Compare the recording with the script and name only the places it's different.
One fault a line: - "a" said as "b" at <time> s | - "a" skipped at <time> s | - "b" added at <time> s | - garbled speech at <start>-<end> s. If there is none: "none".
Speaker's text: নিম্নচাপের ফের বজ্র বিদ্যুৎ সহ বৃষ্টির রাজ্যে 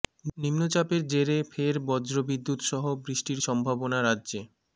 - "জেরে" added at 1.1 s
- "সম্ভাবনা" added at 3.5 s